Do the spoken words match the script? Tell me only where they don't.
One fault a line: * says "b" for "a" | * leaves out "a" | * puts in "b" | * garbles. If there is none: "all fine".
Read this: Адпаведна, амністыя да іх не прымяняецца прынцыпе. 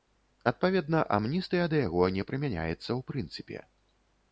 * says "яго" for "іх"
* puts in "ў"